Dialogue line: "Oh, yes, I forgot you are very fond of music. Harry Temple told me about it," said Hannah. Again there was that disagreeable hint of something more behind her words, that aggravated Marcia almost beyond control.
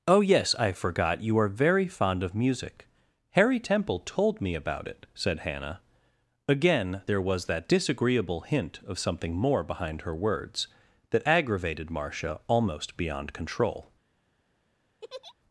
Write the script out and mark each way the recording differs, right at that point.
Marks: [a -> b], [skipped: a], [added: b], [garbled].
"Oh, yes, I forgot you are very fond of music. Harry Temple told me about it," said Hannah. Again there was that disagreeable hint of something more behind her words, that aggravated Marcia almost beyond control.